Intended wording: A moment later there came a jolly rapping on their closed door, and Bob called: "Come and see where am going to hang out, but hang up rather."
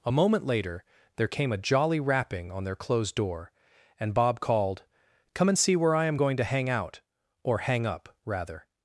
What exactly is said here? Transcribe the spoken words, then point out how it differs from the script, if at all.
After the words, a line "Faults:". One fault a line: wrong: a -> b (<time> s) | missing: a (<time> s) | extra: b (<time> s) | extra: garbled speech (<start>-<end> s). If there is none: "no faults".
A moment later there came a jolly rapping on their closed door, and Bob called: "Come and see where I am going to hang out, or hang up rather."
Faults:
extra: I (6.0 s)
wrong: but -> or (7.4 s)